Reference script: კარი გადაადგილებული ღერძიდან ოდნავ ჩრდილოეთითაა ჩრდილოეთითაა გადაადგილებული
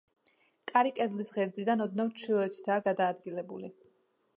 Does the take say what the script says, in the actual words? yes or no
no